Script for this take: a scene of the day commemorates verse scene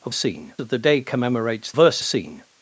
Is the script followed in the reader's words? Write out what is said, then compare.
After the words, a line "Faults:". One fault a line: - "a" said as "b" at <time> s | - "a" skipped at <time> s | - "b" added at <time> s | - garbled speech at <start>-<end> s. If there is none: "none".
a scene of the day commemorates verse scene
Faults:
none